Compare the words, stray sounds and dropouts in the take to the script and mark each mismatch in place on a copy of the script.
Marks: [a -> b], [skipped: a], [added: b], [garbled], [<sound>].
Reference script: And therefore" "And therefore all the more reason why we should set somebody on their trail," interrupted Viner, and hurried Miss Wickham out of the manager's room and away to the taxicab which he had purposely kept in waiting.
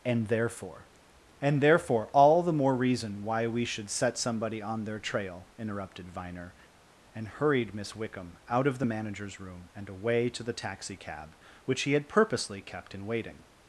And therefore" "And therefore all the more reason why we should set somebody on their trail," interrupted Viner, and hurried Miss Wickham out of the manager's room and away to the taxicab which he had purposely kept in waiting.